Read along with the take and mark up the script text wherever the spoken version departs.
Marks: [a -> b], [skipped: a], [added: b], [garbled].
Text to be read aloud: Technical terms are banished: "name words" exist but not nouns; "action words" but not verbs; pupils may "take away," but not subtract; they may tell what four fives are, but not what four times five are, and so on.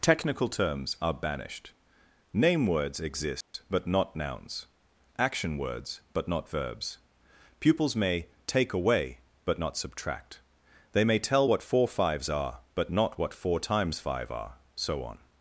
Technical terms are banished: "name words" exist but not nouns; "action words" but not verbs; pupils may "take away," but not subtract; they may tell what four fives are, but not what four times five are, [skipped: and] so on.